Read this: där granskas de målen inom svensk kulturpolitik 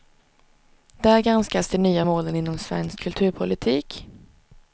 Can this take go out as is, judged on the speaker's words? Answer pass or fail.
fail